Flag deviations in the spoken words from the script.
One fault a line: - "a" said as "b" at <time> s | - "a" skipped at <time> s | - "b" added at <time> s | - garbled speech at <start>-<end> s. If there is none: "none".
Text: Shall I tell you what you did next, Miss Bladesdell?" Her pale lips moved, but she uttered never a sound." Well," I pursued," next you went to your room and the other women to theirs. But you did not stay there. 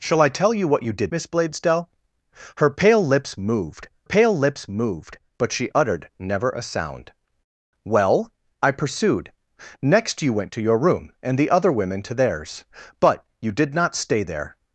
- "next" skipped at 1.1 s
- "pale lips moved" added at 4.0 s